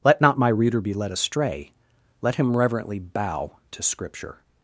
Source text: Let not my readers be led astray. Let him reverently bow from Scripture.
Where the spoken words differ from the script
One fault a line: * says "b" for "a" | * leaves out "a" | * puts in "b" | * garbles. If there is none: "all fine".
* says "reader" for "readers"
* says "to" for "from"